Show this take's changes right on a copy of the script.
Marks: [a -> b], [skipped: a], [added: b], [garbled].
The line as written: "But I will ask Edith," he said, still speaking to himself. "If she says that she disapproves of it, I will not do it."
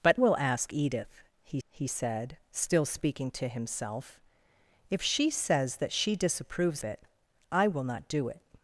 "But [skipped: I] will ask Edith," he [added: he] said, still speaking to himself. "If she says that she disapproves [skipped: of] it, I will not do it."